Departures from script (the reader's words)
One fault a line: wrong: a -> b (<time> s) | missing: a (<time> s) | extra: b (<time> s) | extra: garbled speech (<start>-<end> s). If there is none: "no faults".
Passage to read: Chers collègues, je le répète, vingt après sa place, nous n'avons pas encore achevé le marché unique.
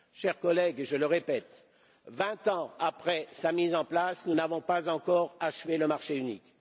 extra: ans (2.5 s)
extra: mise en (3.5 s)